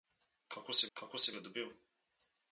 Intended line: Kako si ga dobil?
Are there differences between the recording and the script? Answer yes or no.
yes